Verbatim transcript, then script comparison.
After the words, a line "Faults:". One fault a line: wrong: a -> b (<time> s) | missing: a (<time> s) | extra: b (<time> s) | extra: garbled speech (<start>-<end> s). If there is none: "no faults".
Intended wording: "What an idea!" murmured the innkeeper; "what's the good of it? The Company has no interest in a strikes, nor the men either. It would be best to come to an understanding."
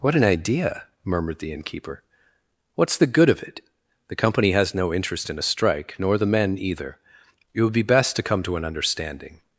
"What an idea!" murmured the innkeeper; "what's the good of it? The Company has no interest in a strike, nor the men either. It would be best to come to an understanding."
Faults:
wrong: strikes -> strike (5.4 s)